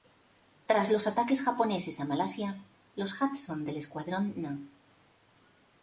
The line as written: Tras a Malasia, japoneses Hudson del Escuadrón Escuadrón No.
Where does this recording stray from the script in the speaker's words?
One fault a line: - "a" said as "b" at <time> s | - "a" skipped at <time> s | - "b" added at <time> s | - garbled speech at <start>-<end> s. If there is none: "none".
- "los ataques japoneses" added at 0.9 s
- "japoneses" said as "los" at 3.0 s
- "Escuadrón" skipped at 4.3 s